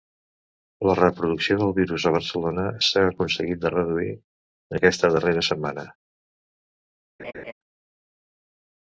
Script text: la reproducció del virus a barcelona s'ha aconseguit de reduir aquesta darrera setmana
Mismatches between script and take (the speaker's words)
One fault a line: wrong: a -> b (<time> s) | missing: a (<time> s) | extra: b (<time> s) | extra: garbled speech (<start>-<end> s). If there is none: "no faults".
no faults